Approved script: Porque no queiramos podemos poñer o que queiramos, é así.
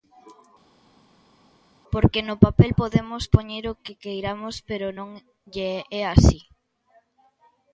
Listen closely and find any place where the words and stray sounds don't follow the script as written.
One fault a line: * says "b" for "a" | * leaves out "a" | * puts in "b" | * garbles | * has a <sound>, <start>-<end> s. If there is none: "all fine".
* says "papel" for "queiramos"
* puts in "pero non lle"